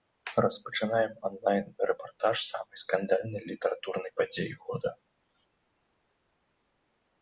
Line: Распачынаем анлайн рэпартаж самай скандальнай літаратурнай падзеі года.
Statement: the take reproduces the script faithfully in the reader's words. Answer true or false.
true